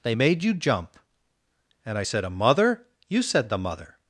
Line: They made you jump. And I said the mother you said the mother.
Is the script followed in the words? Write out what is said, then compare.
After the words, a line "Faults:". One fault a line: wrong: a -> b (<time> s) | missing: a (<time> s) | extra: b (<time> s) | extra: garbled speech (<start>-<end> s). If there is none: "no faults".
They made you jump. And I said a mother you said the mother.
Faults:
wrong: the -> a (2.2 s)